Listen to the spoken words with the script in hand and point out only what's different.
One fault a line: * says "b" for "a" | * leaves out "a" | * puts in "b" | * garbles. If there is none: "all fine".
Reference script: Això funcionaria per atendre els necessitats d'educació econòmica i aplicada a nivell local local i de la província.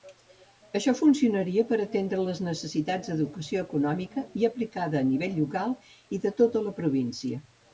* says "les" for "els"
* leaves out "local"
* puts in "tota"